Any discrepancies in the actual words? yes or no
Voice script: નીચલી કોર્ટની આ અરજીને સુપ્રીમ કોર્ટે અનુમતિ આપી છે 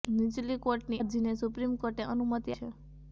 yes